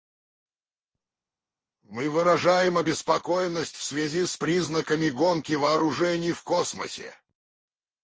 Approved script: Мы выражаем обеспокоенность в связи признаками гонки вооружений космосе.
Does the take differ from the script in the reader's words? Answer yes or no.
yes